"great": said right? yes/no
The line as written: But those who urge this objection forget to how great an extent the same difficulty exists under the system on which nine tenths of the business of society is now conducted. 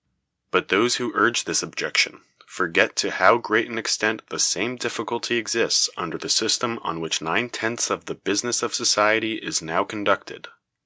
yes